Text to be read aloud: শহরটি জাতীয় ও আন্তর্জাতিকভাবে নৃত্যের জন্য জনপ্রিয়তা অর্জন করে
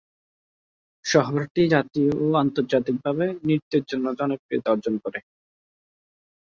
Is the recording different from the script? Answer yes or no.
no